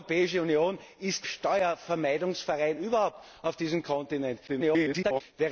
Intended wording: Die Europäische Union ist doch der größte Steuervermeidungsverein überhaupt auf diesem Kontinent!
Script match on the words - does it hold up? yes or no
no